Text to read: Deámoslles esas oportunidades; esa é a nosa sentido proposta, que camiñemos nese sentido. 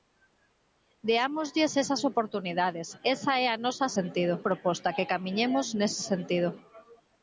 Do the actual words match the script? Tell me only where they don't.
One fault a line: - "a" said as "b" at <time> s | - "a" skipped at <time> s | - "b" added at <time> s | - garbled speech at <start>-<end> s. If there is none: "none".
none